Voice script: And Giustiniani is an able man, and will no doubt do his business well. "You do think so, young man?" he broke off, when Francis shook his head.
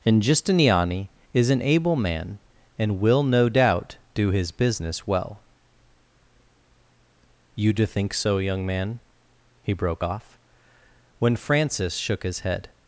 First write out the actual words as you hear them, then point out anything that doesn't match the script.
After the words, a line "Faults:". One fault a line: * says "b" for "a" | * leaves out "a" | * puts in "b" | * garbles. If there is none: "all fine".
And Giustiniani is an able man, and will no doubt do his business well. "You do think so, young man?" he broke off, when Francis shook his head.
Faults:
all fine